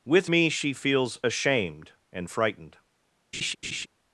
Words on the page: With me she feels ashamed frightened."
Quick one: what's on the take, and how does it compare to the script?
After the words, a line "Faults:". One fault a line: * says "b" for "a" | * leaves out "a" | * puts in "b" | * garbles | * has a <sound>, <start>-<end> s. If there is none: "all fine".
With me she feels ashamed and frightened."
Faults:
* puts in "and"
* has a laugh, 3.3-3.9 s